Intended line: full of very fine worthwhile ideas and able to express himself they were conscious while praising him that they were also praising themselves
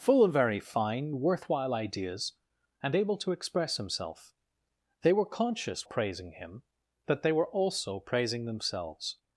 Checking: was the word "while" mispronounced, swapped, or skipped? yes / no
yes